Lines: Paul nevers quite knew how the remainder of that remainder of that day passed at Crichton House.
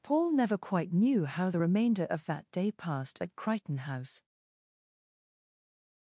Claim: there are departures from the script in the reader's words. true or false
true